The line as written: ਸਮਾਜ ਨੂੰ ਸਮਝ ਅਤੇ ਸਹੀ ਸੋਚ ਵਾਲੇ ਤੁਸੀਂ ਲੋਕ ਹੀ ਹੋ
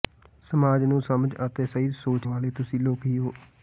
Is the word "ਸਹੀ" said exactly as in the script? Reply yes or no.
yes